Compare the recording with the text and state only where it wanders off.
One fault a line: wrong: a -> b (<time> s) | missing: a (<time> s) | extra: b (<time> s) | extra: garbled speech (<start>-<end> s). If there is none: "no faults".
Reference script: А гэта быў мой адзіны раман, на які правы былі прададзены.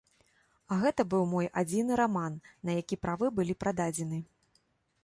no faults